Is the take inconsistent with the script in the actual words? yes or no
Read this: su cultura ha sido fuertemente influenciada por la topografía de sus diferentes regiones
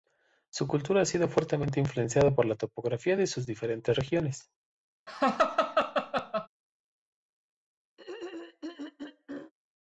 no